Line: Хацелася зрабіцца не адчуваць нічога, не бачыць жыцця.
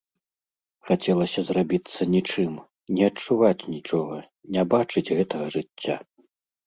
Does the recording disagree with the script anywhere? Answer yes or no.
yes